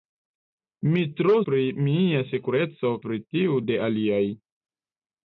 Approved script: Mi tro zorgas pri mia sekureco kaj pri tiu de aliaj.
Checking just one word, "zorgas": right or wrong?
wrong